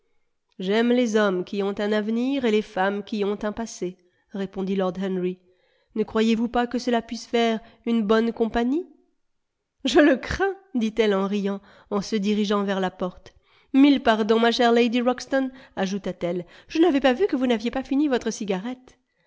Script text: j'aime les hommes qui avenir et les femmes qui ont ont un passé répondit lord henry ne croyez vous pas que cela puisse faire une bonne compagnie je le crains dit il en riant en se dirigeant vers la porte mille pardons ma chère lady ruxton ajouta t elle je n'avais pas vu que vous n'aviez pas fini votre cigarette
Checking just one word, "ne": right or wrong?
right